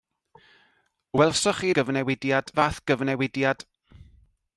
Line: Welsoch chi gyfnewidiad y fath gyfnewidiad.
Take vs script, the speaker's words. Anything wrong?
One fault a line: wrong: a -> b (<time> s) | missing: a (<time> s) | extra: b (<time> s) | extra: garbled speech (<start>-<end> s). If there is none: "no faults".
no faults